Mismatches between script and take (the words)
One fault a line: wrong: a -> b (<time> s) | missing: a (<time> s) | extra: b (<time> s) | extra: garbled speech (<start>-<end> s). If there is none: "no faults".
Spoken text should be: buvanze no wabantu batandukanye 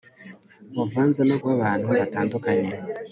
no faults